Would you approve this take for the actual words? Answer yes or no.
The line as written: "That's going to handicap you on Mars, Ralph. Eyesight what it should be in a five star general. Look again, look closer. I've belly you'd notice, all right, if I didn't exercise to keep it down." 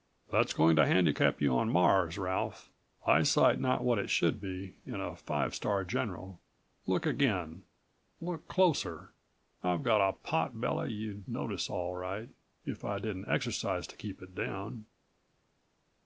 no